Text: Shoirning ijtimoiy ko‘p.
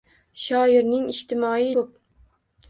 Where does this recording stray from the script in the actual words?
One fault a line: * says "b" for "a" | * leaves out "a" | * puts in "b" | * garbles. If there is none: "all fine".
all fine